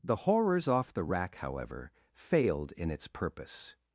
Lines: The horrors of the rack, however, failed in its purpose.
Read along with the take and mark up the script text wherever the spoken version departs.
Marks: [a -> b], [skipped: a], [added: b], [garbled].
The horrors [of -> off] the rack, however, failed in its purpose.